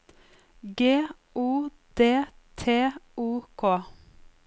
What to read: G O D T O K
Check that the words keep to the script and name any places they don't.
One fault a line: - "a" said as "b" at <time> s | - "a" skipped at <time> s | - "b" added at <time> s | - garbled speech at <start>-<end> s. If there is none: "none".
none